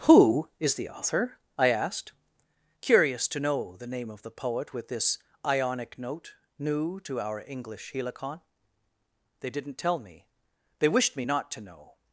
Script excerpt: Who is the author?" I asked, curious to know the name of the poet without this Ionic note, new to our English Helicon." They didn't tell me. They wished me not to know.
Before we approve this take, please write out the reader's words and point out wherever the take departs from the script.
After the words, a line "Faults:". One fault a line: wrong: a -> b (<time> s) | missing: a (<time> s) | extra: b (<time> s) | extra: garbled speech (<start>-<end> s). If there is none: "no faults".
Who is the author?" I asked, curious to know the name of the poet with this Ionic note, new to our English Helicon." They didn't tell me. They wished me not to know.
Faults:
wrong: without -> with (4.7 s)